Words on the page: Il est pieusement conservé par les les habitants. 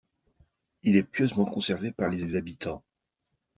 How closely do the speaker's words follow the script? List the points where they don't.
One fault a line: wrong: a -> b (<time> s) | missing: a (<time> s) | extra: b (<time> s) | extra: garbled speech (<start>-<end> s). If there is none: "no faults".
no faults